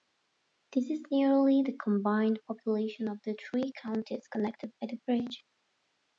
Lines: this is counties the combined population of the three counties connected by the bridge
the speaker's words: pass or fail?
fail